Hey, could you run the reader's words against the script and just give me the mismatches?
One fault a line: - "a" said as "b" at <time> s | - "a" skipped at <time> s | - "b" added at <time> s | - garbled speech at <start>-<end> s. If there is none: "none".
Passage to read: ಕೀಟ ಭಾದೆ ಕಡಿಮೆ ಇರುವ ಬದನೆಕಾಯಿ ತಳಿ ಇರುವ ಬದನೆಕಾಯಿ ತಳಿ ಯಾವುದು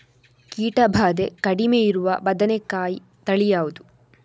- "ಇರುವ ಬದನೆಕಾಯಿ ತಳಿ" skipped at 3.5 s